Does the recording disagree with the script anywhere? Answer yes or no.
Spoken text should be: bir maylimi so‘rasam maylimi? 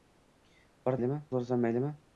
no